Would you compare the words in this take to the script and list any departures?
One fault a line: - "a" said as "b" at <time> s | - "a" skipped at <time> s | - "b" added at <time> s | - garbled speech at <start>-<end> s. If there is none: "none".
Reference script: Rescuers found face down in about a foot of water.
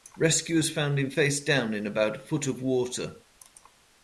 - "him" added at 1.0 s